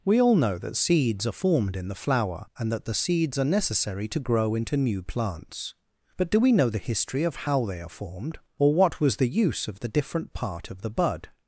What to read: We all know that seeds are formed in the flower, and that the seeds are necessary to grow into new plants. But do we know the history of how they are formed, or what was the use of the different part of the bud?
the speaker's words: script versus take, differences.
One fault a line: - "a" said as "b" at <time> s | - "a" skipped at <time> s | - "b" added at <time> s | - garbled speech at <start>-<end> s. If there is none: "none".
none